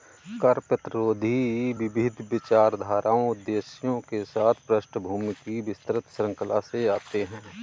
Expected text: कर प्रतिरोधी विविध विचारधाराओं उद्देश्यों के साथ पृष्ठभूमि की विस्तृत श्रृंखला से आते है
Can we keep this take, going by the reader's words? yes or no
yes